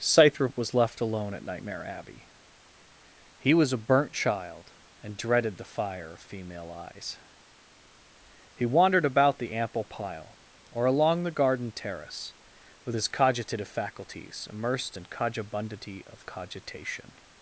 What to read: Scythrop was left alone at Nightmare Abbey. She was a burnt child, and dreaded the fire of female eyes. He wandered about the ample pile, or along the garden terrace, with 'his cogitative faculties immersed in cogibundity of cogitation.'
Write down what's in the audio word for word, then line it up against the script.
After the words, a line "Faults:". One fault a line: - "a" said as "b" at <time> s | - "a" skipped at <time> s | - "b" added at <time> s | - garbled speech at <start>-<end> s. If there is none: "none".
Scythrop was left alone at Nightmare Abbey. He was a burnt child, and dreaded the fire of female eyes. He wandered about the ample pile, or along the garden terrace, with 'his cogitative faculties immersed in cogibundity of cogitation.'
Faults:
- "She" said as "He" at 3.4 s